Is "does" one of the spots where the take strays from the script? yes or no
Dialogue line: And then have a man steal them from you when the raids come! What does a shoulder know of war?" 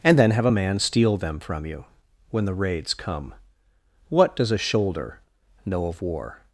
no